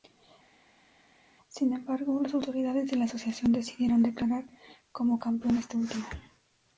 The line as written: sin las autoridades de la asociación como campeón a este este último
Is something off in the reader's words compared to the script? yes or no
yes